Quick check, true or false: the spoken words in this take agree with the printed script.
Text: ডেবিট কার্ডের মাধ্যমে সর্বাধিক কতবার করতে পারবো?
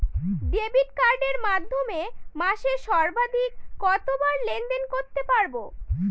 false